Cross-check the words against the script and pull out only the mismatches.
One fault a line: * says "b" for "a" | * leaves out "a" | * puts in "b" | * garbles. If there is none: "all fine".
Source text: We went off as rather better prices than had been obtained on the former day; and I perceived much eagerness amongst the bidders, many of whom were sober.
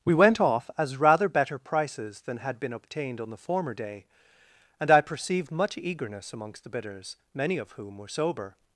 all fine